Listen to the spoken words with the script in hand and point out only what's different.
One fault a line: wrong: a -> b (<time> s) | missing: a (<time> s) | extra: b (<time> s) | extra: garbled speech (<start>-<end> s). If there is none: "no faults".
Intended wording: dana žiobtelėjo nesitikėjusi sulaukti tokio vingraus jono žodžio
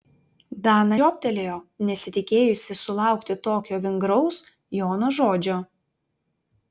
no faults